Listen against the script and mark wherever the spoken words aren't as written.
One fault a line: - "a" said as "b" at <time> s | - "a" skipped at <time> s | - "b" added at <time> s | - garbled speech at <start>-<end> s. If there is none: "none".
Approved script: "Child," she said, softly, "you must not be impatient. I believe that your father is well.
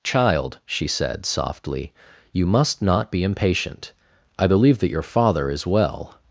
none